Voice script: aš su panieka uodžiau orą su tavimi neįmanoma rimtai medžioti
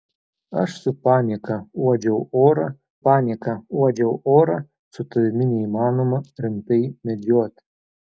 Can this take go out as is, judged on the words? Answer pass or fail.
fail